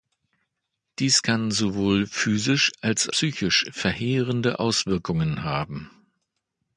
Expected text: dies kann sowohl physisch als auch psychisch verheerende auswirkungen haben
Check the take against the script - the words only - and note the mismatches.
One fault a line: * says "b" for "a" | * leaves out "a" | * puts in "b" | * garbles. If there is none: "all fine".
* leaves out "auch"